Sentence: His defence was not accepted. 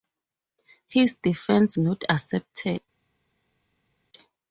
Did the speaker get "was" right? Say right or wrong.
wrong